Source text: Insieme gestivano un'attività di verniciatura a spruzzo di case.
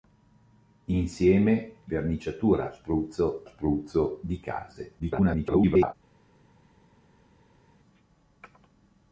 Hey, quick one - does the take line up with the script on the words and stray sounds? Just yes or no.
no